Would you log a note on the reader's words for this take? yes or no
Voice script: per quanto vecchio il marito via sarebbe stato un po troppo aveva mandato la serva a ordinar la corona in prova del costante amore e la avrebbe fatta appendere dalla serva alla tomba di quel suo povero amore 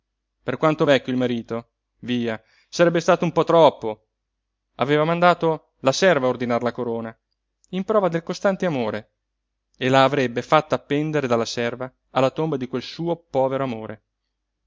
no